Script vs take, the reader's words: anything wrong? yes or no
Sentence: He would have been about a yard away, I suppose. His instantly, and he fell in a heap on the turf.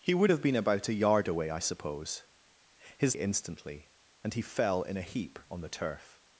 no